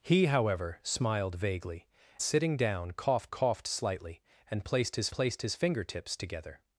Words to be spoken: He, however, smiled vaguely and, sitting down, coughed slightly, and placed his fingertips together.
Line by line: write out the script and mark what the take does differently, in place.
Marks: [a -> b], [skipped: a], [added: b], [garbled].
He, however, smiled vaguely [skipped: and,] sitting down, coughed [added: coughed] slightly, and placed his [added: placed his] fingertips together.